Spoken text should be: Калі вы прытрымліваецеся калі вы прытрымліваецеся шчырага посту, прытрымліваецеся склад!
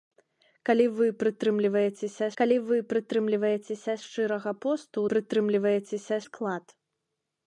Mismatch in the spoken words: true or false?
false